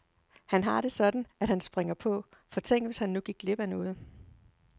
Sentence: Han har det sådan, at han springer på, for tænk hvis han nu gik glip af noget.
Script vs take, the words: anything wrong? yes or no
no